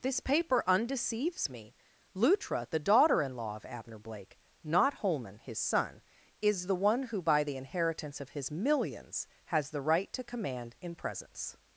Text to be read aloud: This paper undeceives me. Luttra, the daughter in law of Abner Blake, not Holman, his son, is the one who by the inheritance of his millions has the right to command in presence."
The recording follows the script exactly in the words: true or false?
true